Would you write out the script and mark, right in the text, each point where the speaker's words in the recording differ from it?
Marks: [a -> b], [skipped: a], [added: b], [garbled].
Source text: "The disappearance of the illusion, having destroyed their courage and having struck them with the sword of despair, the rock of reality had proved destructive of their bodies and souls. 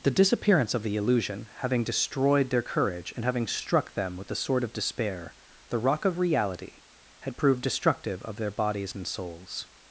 "The disappearance of the illusion, having destroyed their courage and having struck them with the sword of despair, the rock of reality had proved destructive of their bodies and souls.